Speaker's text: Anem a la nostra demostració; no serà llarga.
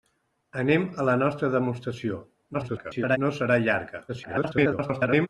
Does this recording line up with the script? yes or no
no